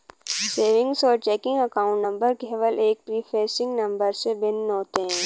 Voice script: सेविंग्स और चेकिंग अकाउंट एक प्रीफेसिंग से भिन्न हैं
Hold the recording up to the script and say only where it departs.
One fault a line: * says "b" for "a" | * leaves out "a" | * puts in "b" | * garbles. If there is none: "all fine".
* puts in "नंबर केवल"
* puts in "नंबर"
* puts in "होते"